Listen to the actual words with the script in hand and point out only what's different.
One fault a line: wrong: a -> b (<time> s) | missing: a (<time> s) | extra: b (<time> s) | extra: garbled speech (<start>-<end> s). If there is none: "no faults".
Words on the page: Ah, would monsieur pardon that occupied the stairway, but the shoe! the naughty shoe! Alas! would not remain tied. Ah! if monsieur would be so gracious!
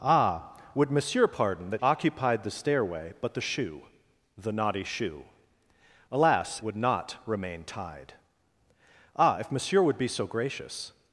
no faults